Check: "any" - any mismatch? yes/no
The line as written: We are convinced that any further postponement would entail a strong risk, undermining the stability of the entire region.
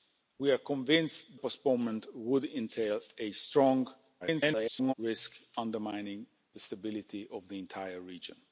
yes